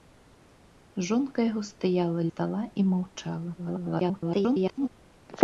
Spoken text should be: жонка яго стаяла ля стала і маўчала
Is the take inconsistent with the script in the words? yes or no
yes